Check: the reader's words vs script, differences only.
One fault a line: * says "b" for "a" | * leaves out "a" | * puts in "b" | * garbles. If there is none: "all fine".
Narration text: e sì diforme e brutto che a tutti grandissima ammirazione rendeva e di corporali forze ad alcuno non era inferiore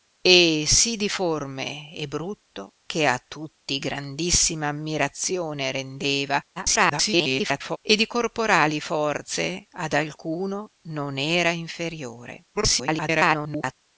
* garbles
* garbles